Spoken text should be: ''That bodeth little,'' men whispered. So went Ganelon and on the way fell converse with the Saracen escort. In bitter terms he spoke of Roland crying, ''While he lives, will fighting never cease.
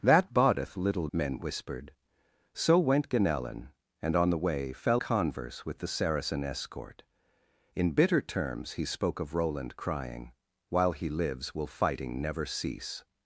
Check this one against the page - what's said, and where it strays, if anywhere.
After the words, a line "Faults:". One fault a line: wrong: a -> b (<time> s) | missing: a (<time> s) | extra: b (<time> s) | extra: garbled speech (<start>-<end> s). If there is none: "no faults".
''That bodeth little,'' men whispered. So went Ganelon and on the way fell converse with the Saracen escort. In bitter terms he spoke of Roland crying, ''While he lives, will fighting never cease.
Faults:
no faults